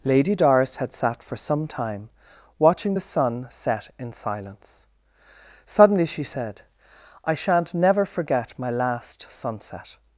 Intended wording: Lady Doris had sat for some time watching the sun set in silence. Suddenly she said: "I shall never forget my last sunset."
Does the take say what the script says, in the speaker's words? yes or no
no